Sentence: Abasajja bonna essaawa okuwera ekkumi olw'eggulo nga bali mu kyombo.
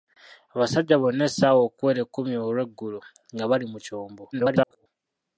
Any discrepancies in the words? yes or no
yes